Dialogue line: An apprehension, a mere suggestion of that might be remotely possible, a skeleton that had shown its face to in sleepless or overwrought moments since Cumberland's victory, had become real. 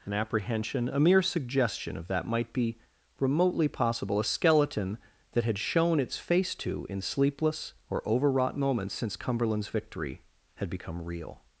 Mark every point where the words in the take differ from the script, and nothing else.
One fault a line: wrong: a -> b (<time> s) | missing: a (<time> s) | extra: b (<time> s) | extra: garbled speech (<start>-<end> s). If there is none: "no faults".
no faults